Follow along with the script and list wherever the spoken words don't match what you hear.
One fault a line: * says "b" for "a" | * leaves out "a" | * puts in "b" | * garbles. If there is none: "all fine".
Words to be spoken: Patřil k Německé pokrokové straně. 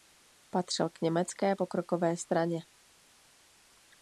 all fine